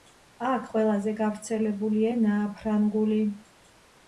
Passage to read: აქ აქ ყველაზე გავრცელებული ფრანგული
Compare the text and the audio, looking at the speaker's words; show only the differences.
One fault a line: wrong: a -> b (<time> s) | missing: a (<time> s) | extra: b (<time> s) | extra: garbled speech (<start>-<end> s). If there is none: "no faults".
missing: აქ (0.6 s)
extra: ენაა (2.1 s)